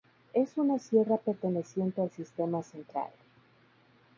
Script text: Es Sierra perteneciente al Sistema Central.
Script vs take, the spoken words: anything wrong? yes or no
yes